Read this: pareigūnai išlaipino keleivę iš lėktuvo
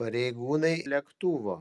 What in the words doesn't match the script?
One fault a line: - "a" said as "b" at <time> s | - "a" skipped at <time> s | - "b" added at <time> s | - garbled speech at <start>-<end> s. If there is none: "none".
- "išlaipino keleivę iš" skipped at 0.7 s